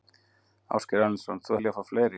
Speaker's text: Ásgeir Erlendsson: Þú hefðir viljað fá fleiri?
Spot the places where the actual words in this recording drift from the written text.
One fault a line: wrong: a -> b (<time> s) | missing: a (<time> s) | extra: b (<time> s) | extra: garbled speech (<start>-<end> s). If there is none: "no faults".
missing: hefðir (1.6 s)